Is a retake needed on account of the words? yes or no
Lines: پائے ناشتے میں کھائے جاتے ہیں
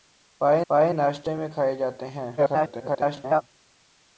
yes